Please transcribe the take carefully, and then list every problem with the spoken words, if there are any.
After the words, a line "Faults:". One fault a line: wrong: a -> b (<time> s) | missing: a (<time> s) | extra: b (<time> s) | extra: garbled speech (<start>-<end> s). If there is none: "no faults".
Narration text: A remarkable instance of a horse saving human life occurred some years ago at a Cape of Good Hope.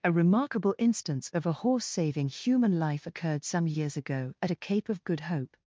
A remarkable instance of a horse saving human life occurred some years ago at a Cape of Good Hope.
Faults:
no faults